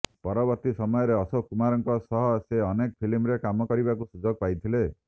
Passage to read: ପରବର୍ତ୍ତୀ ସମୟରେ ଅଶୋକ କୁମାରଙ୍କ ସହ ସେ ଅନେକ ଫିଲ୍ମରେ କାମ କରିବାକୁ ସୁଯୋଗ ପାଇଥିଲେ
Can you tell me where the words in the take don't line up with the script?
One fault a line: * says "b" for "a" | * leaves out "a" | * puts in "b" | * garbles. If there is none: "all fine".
all fine